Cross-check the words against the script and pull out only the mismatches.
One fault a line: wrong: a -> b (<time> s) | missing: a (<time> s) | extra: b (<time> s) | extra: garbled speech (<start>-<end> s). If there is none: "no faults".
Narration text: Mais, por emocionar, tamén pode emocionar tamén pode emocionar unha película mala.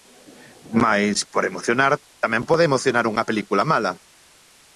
missing: tamén pode emocionar (3.0 s)